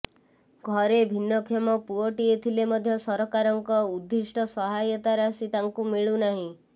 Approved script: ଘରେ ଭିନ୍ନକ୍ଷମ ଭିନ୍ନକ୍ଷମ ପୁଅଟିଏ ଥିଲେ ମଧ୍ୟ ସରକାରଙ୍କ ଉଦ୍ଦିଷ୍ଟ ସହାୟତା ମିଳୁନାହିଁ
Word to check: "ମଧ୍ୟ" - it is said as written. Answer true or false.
true